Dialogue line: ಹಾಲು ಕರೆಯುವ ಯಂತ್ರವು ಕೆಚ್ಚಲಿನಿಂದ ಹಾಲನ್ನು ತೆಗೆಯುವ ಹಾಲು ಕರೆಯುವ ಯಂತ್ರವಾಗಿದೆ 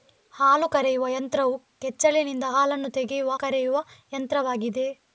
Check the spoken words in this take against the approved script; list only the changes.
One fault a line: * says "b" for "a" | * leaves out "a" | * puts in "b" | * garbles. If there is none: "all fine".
* leaves out "ಹಾಲು"